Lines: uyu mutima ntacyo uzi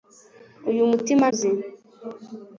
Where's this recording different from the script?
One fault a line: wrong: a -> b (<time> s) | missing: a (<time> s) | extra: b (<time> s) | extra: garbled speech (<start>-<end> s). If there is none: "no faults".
missing: ntacyo (1.2 s)